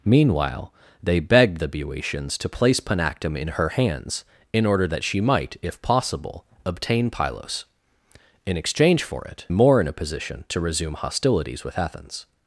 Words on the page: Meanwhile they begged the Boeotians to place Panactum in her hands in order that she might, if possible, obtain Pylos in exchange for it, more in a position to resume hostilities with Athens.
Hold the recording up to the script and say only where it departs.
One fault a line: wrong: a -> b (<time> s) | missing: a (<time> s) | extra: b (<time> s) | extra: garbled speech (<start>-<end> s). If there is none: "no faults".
no faults